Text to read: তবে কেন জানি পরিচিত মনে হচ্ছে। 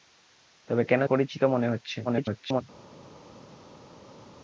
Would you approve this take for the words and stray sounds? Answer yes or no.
no